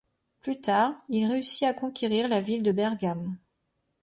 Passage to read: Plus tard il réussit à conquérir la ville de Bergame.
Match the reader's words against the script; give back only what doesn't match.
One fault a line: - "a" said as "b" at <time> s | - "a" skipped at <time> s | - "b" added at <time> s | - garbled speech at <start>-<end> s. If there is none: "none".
none